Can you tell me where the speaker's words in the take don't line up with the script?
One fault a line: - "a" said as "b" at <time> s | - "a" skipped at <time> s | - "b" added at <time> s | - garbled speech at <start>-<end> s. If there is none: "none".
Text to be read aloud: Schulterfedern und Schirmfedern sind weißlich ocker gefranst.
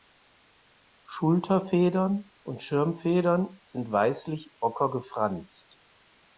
none